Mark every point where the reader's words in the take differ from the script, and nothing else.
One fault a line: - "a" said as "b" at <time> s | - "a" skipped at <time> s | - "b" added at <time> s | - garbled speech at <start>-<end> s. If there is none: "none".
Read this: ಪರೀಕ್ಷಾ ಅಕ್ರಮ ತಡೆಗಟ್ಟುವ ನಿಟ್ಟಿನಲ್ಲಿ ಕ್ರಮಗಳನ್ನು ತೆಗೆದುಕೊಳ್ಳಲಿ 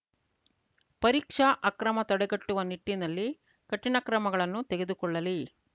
- "ಕಠಿಣ" added at 3.7 s